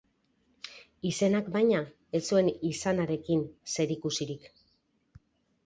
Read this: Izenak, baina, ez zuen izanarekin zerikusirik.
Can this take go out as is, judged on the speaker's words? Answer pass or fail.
pass